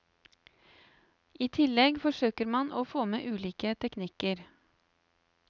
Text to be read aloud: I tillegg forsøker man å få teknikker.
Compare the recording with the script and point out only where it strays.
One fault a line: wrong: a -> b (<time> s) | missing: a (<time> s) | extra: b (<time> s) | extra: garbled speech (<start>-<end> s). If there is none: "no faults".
extra: med ulike (3.1 s)